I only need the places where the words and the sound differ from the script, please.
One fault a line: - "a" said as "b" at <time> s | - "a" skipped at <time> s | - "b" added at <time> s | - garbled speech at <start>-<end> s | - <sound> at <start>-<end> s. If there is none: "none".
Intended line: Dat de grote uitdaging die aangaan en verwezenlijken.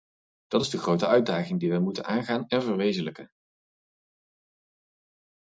- "is" added at 0.6 s
- "wij moeten" added at 1.7 s